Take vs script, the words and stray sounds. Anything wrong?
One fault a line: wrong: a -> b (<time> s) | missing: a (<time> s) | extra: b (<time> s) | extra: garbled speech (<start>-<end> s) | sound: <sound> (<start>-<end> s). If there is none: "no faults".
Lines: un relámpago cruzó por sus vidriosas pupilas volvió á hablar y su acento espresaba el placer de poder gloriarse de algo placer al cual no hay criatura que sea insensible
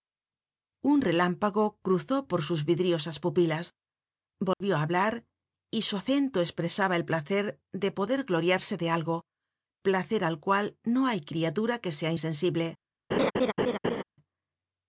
sound: dropout (4.5-4.6 s)
sound: laugh (13.1-14.0 s)